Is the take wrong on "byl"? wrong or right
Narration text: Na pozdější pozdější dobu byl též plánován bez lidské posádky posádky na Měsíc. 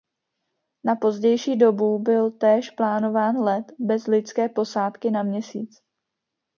right